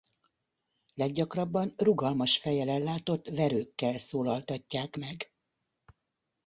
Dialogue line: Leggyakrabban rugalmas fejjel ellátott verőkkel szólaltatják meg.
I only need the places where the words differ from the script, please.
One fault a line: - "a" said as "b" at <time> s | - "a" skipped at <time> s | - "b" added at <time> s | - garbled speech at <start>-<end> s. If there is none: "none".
none